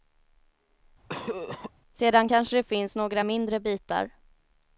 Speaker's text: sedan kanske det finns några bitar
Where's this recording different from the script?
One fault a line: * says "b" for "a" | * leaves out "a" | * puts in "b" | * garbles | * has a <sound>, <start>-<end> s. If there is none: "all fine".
* has a cough, 1.1-1.7 s
* puts in "mindre"